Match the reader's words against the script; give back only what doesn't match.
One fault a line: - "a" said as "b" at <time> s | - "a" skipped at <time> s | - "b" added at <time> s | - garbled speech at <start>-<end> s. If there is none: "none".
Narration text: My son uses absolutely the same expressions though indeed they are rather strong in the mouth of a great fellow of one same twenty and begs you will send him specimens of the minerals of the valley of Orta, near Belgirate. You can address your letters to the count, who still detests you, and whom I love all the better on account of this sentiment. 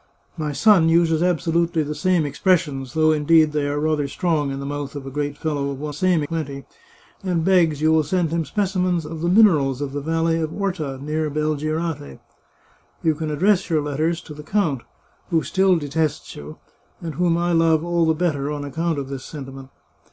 none